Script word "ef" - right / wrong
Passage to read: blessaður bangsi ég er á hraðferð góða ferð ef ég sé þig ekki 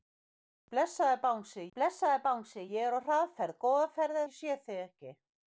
wrong